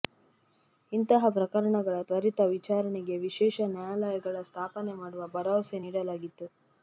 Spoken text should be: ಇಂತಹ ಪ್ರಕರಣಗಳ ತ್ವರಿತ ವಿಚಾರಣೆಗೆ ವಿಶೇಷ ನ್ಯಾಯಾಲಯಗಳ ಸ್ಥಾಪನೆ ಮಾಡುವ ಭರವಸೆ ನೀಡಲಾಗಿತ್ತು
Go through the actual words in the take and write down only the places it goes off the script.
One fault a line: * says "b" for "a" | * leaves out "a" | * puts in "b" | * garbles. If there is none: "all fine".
all fine